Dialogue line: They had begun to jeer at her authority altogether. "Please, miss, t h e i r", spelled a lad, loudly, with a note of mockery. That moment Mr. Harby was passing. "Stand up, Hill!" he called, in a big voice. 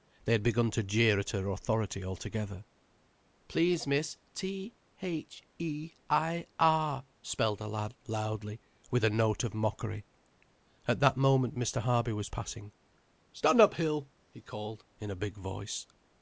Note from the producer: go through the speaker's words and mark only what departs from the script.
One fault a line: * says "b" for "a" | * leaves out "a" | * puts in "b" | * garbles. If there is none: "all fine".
* puts in "At"